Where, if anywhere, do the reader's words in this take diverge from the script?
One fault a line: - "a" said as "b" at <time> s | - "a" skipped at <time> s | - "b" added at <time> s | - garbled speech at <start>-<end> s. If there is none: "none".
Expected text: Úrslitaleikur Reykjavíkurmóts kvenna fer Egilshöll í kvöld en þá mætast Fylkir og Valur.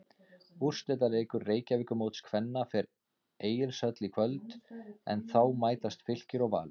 none